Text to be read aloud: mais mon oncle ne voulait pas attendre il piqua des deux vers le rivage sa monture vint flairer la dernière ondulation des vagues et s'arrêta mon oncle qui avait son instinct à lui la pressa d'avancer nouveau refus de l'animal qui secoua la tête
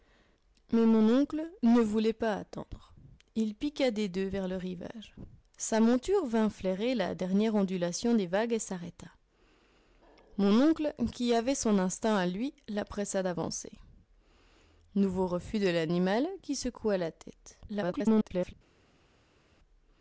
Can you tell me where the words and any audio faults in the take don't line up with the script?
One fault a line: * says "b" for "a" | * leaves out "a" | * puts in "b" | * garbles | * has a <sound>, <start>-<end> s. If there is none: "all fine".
* garbles